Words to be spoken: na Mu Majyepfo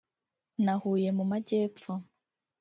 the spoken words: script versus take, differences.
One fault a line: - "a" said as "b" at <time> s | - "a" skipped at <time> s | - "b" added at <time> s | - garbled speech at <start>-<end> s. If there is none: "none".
- "Huye" added at 0.8 s